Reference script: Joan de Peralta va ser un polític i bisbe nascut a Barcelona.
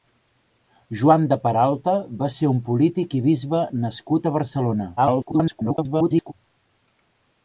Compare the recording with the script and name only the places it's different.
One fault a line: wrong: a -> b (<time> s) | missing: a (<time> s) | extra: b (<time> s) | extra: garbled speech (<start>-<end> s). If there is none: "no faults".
extra: garbled speech (5.0-6.3 s)